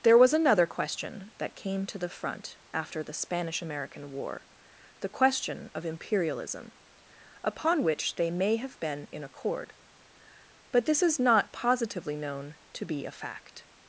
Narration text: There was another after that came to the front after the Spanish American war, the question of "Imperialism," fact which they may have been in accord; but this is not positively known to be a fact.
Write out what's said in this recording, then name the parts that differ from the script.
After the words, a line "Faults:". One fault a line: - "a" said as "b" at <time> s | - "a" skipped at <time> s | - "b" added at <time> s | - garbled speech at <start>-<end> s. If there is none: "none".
There was another question that came to the front after the Spanish American war, the question of "Imperialism," upon which they may have been in accord; but this is not positively known to be a fact.
Faults:
- "after" said as "question" at 0.7 s
- "fact" said as "upon" at 7.4 s